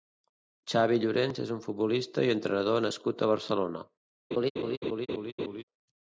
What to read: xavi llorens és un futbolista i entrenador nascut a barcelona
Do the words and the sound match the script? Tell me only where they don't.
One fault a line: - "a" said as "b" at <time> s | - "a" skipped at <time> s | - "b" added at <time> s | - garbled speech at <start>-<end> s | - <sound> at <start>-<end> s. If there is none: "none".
- laugh at 4.3-5.6 s